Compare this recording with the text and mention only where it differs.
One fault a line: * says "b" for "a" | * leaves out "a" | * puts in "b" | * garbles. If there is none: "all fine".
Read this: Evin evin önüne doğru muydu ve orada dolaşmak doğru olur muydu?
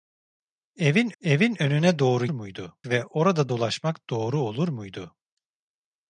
all fine